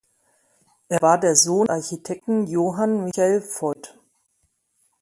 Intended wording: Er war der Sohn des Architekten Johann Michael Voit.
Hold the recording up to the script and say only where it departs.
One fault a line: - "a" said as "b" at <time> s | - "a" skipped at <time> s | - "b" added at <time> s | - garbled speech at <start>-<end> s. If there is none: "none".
- "des" skipped at 1.7 s